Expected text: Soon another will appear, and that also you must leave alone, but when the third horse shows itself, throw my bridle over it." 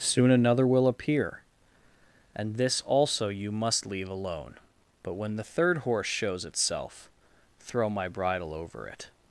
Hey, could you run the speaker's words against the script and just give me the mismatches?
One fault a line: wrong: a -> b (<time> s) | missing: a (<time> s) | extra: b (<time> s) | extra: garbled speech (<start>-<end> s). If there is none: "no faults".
wrong: that -> this (2.6 s)